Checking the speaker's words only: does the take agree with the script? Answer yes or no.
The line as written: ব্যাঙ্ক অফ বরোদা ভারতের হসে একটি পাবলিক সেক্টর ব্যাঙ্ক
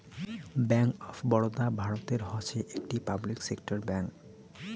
yes